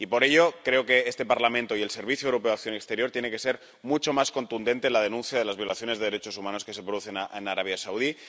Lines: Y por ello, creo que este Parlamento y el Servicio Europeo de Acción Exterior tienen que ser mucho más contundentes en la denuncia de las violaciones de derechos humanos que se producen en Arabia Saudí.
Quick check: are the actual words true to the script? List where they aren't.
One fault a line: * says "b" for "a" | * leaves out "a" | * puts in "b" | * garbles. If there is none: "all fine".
all fine